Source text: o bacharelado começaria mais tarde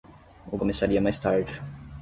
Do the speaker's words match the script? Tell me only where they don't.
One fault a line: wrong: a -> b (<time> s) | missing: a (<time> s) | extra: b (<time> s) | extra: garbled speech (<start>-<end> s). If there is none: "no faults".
missing: bacharelado (0.6 s)